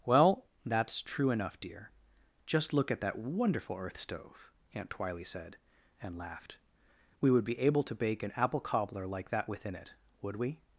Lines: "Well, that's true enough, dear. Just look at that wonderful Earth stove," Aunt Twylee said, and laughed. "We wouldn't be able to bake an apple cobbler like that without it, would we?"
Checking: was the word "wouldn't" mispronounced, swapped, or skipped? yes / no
yes